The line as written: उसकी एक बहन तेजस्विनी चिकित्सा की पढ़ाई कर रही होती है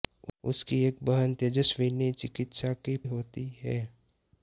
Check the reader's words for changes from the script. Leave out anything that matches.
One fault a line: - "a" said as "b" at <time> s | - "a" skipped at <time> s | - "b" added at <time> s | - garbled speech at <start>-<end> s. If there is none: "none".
- "पढ़ाई कर रही" skipped at 3.0 s